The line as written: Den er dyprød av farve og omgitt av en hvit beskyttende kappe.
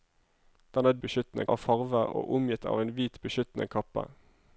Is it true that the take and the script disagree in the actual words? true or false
true